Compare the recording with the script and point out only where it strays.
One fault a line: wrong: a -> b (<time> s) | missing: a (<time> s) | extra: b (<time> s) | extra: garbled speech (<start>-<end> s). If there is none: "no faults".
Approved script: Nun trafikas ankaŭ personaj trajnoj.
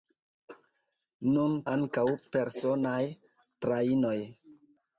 missing: trafikas (1.5 s)